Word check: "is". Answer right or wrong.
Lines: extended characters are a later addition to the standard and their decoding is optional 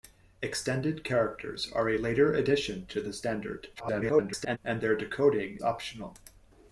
wrong